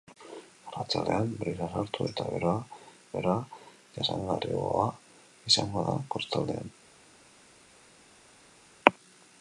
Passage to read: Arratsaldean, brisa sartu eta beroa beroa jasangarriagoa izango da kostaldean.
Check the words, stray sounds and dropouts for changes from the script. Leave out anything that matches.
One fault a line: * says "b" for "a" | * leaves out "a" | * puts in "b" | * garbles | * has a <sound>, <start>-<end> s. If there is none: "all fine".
all fine